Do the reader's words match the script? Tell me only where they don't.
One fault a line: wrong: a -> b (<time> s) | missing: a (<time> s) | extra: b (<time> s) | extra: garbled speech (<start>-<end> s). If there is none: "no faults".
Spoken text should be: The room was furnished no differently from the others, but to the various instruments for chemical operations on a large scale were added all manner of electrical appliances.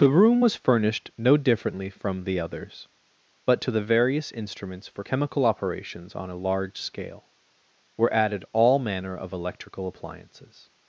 no faults